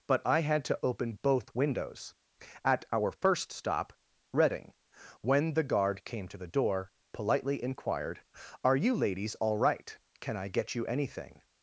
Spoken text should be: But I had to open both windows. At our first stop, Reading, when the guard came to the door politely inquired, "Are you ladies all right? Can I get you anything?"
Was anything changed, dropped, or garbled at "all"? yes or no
no